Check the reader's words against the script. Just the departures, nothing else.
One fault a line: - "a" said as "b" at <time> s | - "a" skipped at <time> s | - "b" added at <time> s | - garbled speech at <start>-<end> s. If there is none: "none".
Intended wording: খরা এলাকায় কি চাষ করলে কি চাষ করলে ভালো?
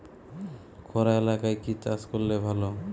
- "কি চাষ করলে" skipped at 2.3 s